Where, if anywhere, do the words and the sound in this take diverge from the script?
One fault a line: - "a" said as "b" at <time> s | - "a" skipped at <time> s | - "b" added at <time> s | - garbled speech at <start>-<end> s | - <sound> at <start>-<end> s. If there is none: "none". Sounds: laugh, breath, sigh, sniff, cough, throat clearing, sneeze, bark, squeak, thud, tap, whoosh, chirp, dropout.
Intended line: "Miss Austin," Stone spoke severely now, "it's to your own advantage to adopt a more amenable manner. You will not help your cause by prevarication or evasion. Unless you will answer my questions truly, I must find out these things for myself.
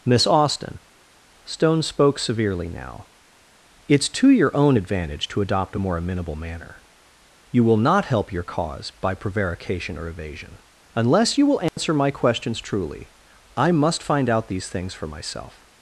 - dropout at 11.7-11.8 s